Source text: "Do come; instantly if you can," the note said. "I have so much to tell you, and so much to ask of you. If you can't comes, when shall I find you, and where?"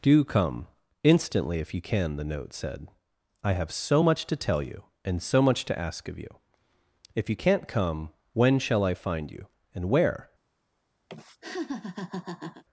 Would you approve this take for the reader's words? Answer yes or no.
no